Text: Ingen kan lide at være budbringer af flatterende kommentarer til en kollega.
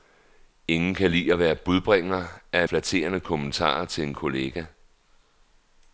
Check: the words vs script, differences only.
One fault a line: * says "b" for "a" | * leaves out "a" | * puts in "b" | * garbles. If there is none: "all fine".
all fine